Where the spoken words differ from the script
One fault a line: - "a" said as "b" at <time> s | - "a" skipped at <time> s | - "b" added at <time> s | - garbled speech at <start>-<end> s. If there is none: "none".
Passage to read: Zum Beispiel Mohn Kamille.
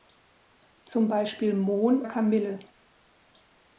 none